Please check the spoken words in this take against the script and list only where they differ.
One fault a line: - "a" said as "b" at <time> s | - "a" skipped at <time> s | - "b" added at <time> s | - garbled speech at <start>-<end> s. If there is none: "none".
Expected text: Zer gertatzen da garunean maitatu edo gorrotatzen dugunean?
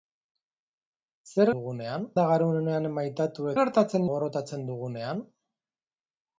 - "gertatzen" said as "dugunean" at 1.6 s
- "edo" said as "gertatzen" at 3.6 s